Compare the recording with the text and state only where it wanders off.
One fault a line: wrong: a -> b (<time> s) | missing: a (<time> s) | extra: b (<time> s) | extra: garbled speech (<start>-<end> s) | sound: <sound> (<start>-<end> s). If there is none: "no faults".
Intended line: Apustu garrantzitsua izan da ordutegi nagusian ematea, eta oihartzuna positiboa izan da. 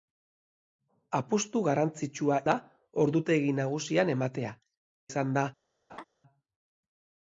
missing: izan (2.4 s)
missing: eta oihartzuna positiboa (4.5 s)
sound: laugh (5.9-6.1 s)